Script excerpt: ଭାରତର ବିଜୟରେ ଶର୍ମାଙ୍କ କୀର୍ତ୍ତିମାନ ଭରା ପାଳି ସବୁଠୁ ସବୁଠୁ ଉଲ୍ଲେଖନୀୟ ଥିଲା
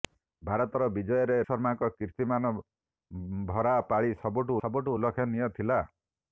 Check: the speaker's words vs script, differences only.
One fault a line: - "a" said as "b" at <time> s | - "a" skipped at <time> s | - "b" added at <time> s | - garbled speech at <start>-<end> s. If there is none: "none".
none